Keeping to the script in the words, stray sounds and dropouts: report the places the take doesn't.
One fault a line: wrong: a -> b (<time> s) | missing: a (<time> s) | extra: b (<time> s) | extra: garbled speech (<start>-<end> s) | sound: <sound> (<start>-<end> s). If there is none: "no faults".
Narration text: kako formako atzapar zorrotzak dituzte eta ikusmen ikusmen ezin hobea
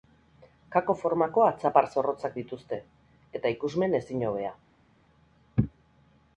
missing: ikusmen (4.0 s)